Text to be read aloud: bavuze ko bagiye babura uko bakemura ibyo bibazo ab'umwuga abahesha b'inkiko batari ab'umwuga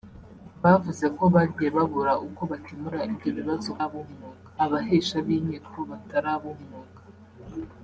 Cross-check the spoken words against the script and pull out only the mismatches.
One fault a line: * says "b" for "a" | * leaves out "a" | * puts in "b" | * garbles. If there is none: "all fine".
all fine